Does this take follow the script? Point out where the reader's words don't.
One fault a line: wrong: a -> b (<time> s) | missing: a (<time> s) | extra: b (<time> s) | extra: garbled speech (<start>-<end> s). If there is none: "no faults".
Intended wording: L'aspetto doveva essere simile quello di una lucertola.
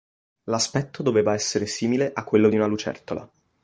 extra: a (2.1 s)